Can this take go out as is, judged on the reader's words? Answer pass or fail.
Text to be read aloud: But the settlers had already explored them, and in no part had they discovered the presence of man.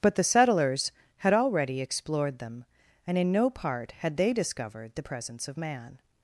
pass